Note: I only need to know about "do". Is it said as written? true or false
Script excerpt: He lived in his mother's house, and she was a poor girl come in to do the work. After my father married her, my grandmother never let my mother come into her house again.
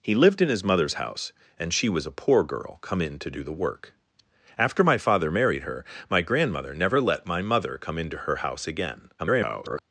true